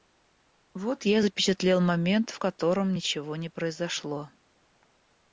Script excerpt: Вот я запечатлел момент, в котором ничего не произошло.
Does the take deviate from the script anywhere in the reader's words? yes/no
no